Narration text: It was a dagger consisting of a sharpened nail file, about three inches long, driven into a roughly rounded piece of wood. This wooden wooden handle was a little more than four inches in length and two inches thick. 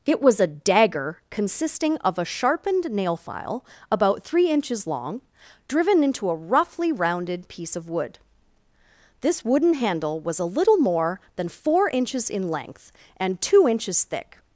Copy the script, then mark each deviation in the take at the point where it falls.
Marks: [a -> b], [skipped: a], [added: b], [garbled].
It was a dagger consisting of a sharpened nail file, about three inches long, driven into a roughly rounded piece of wood. This wooden [skipped: wooden] handle was a little more than four inches in length and two inches thick.